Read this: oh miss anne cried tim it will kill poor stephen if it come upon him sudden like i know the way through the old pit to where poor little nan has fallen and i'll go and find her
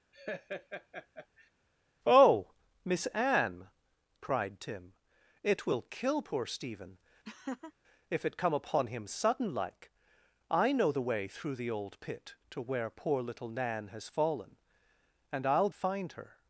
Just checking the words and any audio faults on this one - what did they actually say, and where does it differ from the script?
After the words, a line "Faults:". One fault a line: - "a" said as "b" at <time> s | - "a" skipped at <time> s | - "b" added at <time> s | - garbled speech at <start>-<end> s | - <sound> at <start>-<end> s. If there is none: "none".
oh miss anne cried tim it will kill poor stephen if it come upon him sudden like i know the way through the old pit to where poor little nan has fallen and i'll find her
Faults:
- laugh at 0.1-1.5 s
- laugh at 7.2-7.7 s
- "go and" skipped at 15.7 s